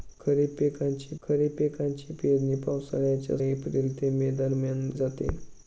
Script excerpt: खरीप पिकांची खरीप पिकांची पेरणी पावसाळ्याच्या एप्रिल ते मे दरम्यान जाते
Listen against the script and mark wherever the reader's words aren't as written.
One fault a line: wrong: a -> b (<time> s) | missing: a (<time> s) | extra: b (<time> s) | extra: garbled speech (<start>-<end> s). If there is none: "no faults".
no faults